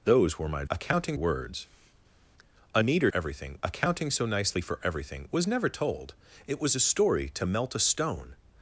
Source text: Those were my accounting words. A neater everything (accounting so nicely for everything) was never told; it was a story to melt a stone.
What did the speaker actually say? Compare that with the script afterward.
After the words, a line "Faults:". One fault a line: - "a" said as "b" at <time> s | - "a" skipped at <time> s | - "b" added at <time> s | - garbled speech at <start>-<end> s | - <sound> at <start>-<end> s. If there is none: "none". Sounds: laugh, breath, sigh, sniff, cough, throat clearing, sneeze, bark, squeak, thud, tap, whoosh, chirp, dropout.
Those were my accounting words. A neater everything (accounting so nicely for everything) was never told; it was a story to melt a stone.
Faults:
none